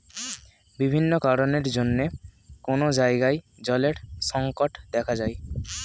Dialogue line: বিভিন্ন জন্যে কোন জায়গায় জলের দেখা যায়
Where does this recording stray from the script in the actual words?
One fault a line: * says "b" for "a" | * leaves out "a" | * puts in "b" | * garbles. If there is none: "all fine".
* puts in "কারণের"
* puts in "সংকট"